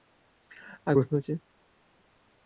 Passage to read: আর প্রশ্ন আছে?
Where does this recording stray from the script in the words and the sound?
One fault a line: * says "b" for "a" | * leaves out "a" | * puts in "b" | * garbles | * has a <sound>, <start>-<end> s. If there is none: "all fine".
all fine